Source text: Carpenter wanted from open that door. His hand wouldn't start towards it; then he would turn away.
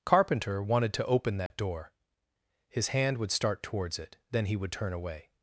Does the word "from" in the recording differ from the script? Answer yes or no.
yes